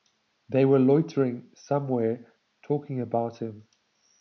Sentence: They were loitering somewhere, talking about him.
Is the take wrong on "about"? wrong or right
right